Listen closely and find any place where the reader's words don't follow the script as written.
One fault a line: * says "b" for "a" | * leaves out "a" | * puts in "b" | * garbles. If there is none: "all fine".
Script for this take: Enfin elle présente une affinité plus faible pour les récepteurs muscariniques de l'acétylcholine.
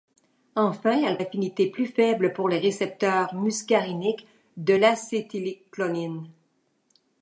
* leaves out "présente une"